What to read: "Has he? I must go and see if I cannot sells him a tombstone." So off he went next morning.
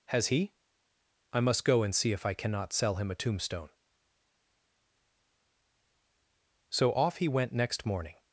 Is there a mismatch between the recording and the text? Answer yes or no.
yes